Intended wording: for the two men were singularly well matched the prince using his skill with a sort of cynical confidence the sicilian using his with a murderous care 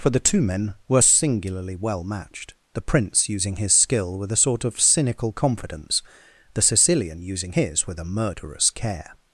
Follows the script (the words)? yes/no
yes